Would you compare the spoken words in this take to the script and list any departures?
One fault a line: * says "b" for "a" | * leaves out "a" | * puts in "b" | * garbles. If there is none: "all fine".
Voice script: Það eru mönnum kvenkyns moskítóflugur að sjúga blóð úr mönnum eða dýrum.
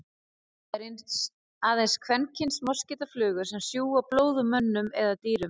* says "aðeins" for "mönnum"
* says "sem" for "að"